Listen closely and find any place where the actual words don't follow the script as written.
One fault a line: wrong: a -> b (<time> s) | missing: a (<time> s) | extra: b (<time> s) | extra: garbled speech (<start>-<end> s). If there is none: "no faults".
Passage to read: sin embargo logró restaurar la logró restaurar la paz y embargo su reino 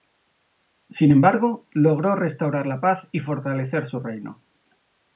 missing: logró restaurar la (2.8 s)
wrong: embargo -> fortalecer (3.2 s)